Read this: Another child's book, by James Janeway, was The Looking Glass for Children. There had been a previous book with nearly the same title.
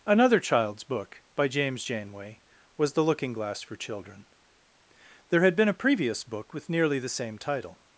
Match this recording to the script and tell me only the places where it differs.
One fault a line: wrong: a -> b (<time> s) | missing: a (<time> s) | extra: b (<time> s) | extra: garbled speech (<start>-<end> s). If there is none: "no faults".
no faults